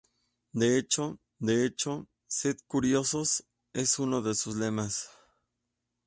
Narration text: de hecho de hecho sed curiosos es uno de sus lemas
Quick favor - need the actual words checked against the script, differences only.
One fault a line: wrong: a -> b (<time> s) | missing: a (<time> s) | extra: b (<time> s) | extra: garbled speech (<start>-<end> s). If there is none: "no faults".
no faults